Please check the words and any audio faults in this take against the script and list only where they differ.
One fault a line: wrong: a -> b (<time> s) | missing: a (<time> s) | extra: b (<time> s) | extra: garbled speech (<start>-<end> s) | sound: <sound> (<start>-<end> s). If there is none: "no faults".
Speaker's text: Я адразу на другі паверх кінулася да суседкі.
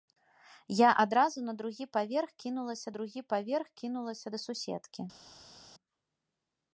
extra: другі паверх кінулася (2.9 s)